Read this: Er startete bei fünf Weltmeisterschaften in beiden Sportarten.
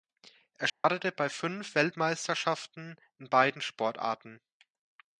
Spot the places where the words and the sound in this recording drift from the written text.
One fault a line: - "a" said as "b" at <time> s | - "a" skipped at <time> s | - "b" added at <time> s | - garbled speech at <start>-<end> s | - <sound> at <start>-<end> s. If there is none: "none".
- dropout at 0.7-0.8 s